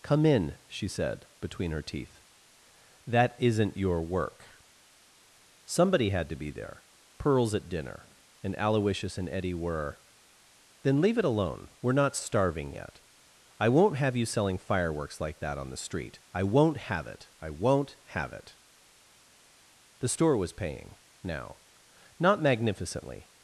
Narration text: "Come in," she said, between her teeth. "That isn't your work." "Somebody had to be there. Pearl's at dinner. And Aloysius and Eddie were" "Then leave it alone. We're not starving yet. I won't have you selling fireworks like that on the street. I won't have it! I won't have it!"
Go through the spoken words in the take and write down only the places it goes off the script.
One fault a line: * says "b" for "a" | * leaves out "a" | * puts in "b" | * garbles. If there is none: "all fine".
* puts in "The store was paying now Not magnificently"